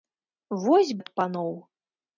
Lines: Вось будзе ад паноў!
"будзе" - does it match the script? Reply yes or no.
no